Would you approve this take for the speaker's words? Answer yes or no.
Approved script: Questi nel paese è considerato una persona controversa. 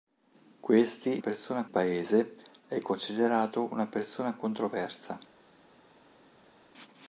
no